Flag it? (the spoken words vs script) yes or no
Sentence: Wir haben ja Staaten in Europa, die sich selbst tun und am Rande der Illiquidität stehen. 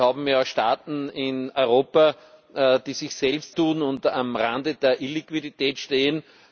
no